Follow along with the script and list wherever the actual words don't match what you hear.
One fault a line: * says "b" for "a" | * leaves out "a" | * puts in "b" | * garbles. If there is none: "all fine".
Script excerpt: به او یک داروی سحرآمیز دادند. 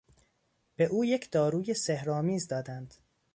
all fine